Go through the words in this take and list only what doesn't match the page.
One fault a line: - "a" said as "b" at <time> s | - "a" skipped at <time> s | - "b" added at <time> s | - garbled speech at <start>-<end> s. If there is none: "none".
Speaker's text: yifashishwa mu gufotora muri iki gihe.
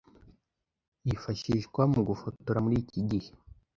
none